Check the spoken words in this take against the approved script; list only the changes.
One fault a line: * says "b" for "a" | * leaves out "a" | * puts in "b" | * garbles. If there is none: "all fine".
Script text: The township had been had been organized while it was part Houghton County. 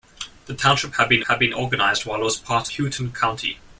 all fine